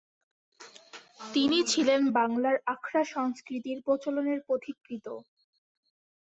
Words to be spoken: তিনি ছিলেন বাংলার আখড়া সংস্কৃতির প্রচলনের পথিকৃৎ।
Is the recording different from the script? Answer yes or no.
no